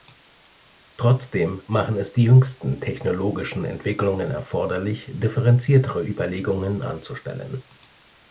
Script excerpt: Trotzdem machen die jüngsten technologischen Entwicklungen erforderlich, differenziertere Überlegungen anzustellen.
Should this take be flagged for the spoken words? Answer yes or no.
yes